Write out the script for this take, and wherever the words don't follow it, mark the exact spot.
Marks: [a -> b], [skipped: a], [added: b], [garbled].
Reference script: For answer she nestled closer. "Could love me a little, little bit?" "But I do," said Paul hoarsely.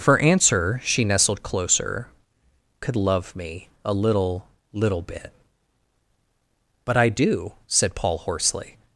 For answer she nestled closer. "Could love me a little, little bit?" "But I do," said Paul hoarsely.